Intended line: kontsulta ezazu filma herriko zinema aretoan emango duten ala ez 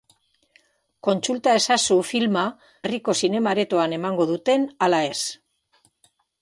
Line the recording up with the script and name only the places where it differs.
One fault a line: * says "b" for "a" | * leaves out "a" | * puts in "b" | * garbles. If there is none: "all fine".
all fine